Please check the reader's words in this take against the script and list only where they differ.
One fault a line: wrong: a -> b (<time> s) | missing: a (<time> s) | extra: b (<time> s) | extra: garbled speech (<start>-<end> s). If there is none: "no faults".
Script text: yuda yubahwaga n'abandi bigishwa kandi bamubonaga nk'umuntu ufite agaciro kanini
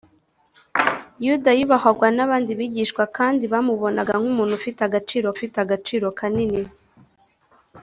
extra: ufite agaciro (5.3 s)